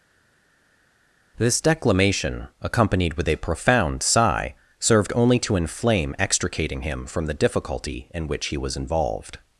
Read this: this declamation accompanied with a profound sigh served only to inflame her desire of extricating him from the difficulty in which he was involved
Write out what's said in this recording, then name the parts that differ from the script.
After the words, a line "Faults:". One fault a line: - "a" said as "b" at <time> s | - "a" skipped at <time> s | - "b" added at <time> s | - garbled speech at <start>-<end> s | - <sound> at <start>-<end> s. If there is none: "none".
this declamation accompanied with a profound sigh served only to inflame extricating him from the difficulty in which he was involved
Faults:
- "her desire of" skipped at 6.2 s